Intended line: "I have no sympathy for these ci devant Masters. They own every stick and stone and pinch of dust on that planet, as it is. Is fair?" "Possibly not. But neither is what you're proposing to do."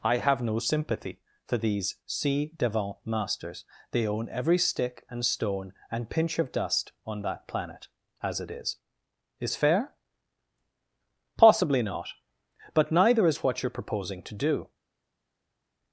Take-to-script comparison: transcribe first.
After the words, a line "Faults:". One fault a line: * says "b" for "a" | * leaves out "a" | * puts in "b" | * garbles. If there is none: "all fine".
"I have no sympathy for these ci devant Masters. They own every stick and stone and pinch of dust on that planet, as it is. Is fair?" "Possibly not. But neither is what you're proposing to do."
Faults:
all fine